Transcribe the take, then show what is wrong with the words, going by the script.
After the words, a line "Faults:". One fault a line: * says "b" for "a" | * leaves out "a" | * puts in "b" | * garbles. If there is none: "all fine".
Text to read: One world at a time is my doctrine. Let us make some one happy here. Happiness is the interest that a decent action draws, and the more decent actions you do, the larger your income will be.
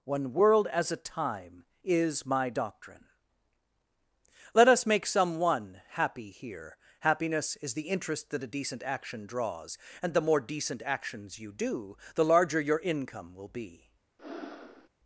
One world as a time is my doctrine. Let us make some one happy here. Happiness is the interest that a decent action draws, and the more decent actions you do, the larger your income will be.
Faults:
* says "as" for "at"